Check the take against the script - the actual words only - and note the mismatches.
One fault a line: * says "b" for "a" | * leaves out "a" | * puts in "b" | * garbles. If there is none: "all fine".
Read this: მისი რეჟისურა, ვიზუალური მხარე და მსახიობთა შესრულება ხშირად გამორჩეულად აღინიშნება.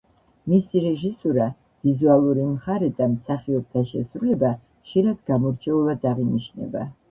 all fine